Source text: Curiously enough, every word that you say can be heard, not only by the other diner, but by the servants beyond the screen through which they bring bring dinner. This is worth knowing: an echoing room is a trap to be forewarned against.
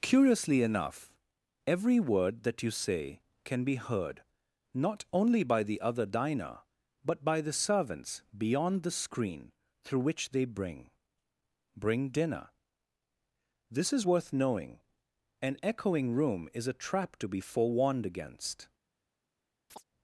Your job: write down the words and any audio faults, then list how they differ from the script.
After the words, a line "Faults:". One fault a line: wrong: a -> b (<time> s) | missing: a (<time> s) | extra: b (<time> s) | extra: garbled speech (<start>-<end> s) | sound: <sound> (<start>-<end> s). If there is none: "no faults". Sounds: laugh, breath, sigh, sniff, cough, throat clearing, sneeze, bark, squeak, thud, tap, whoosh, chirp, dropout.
Curiously enough, every word that you say can be heard, not only by the other diner, but by the servants beyond the screen through which they bring bring dinner. This is worth knowing: an echoing room is a trap to be forewarned against.
Faults:
sound: chirp (19.7-19.8 s)